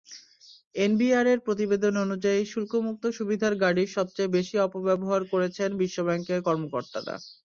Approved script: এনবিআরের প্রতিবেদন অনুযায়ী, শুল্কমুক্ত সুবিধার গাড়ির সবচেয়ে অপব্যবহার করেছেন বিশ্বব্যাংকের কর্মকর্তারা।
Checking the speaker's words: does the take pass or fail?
fail